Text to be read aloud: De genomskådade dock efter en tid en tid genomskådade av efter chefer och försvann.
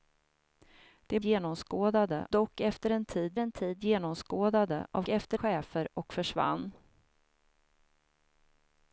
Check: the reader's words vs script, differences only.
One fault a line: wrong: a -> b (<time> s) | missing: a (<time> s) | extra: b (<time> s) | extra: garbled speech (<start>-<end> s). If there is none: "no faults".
no faults